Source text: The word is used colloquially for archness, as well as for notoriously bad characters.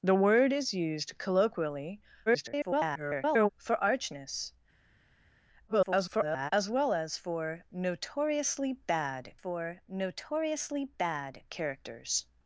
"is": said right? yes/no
yes